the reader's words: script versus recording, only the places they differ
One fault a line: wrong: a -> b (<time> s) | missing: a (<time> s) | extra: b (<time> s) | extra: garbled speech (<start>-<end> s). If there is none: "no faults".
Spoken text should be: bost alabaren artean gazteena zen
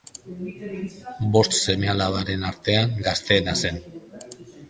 extra: seme (1.6 s)